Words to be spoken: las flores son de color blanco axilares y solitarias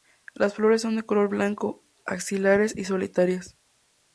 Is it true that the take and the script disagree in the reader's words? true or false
false